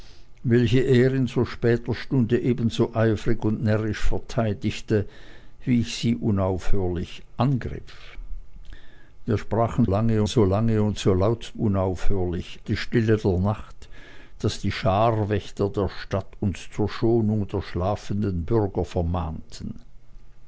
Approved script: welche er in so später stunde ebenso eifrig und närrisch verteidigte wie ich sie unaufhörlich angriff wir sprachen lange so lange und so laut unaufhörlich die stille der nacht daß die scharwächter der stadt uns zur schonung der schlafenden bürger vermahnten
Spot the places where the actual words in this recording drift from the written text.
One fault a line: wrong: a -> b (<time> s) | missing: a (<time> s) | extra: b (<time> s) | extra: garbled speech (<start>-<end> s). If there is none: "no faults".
no faults